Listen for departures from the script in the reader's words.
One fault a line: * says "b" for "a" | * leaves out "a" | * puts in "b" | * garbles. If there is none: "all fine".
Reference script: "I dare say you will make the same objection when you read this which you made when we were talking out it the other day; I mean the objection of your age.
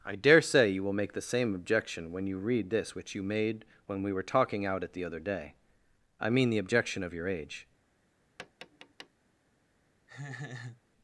all fine